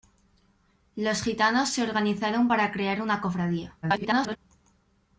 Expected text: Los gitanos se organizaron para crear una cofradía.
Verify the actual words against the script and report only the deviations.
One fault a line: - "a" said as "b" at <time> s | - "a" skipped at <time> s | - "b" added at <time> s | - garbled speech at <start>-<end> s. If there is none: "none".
- garbled speech at 3.8-4.4 s